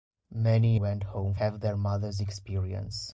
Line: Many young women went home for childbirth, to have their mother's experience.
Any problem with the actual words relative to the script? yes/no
yes